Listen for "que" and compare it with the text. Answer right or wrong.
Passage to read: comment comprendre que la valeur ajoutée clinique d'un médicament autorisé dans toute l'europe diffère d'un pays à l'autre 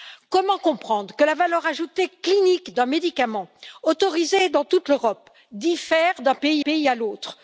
right